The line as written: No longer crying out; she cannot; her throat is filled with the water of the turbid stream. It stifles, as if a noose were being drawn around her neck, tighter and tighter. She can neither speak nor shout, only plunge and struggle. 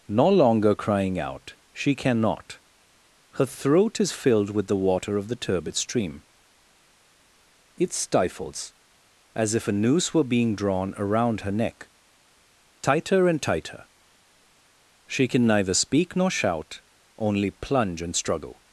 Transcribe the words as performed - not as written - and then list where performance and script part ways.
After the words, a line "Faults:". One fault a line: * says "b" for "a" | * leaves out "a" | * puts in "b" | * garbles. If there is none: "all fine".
No longer crying out; she cannot; her throat is filled with the water of the turbid stream. It stifles, as if a noose were being drawn around her neck, tighter and tighter. She can neither speak nor shout, only plunge and struggle.
Faults:
all fine